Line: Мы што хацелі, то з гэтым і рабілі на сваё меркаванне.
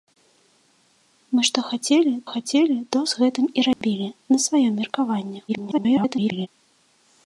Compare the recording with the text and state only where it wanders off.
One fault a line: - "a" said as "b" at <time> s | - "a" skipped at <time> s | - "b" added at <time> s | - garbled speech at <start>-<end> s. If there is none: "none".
- "хацелі" added at 2.3 s
- garbled speech at 5.5-6.5 s